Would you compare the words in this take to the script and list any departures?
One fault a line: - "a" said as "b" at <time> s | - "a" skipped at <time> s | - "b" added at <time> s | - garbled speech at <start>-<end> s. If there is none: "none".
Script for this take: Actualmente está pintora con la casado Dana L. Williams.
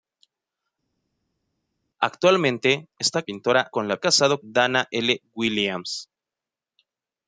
none